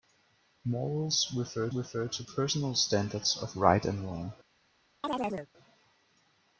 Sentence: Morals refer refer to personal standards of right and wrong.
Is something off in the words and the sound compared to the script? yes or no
yes